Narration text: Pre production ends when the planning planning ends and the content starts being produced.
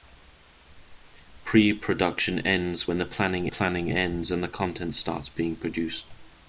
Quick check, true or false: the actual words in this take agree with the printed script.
true